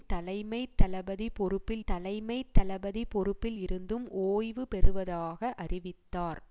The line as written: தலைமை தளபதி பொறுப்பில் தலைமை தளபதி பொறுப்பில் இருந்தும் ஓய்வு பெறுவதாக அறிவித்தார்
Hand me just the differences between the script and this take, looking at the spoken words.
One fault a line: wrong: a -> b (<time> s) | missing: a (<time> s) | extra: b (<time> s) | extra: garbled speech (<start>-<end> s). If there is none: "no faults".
no faults